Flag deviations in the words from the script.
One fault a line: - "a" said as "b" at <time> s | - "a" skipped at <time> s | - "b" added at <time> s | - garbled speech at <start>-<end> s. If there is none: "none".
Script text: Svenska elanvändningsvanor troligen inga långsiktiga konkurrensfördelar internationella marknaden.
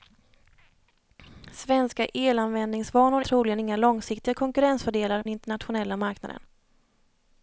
none